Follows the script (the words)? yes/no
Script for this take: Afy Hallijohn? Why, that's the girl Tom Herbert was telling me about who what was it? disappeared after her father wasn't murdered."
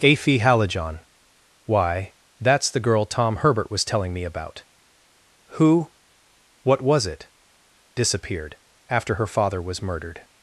no